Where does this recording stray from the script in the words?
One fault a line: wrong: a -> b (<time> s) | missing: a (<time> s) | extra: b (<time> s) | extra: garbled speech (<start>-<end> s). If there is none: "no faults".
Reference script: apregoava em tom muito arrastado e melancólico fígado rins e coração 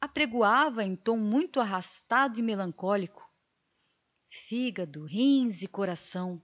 no faults